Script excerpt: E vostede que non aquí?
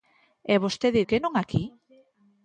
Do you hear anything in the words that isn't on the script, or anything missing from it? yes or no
no